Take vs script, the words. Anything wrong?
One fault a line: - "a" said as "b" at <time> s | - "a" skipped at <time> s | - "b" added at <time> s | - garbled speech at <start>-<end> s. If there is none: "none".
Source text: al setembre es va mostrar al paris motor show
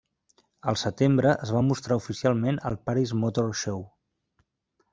- "oficialment" added at 2.0 s